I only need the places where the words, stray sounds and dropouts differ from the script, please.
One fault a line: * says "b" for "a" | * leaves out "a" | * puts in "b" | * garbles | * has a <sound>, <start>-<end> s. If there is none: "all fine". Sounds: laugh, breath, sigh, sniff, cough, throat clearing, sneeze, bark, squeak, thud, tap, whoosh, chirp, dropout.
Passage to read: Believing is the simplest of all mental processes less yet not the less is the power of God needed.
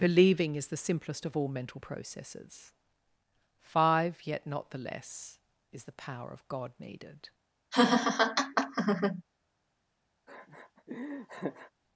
* says "five" for "less"
* has a laugh, 7.7-9.2 s
* has a laugh, 10.3-11.7 s